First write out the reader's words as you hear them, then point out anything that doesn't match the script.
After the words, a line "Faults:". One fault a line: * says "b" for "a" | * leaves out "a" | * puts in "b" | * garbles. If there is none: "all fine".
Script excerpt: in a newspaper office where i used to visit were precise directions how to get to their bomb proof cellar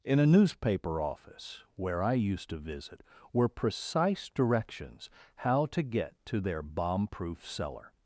in a newspaper office where i used to visit were precise directions how to get to their bomb proof cellar
Faults:
all fine